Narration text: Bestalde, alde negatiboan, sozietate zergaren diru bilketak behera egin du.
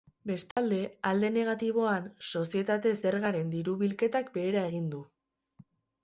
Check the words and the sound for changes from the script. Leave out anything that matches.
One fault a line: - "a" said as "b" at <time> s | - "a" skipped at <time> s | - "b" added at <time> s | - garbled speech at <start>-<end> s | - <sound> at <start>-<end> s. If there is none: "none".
- dropout at 0.5-0.6 s